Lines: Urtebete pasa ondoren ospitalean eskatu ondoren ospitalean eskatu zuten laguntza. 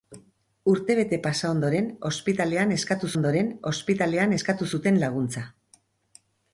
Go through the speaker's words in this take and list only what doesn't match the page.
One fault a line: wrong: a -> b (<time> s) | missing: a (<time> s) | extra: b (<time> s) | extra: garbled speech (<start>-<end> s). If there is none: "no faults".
no faults